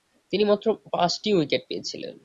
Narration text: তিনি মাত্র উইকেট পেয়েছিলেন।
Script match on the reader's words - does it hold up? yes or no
no